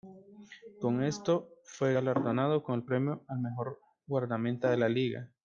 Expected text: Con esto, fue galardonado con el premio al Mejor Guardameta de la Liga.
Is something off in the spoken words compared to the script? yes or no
no